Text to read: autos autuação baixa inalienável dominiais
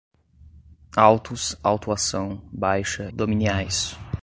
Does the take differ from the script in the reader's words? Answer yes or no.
yes